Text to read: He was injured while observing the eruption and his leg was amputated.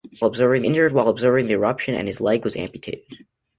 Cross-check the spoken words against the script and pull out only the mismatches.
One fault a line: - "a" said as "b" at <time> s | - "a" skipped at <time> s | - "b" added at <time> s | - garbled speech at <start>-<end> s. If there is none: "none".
- "was" said as "observing" at 0.2 s